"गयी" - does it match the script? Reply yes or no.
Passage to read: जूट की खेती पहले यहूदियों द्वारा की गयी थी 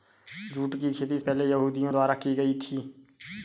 yes